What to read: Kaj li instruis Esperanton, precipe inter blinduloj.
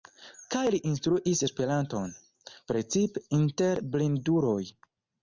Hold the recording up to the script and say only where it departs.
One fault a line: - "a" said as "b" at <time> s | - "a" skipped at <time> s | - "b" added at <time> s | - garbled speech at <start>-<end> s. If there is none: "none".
none